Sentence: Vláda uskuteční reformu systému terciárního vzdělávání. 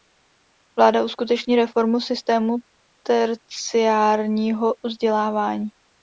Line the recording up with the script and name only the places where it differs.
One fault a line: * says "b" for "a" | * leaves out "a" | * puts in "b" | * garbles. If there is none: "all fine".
all fine